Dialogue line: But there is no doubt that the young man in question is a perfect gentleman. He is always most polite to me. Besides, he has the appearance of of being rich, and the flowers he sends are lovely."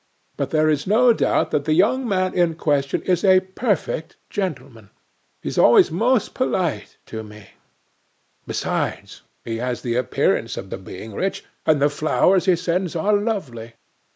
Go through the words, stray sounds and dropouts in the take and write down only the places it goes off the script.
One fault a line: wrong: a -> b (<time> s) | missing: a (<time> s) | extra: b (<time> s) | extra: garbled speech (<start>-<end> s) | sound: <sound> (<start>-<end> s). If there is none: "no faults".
no faults